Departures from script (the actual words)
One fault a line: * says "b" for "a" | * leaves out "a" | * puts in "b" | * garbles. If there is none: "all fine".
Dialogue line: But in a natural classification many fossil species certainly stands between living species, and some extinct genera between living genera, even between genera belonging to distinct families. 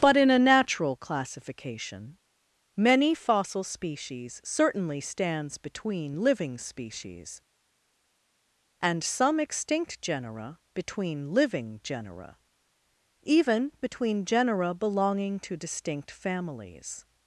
all fine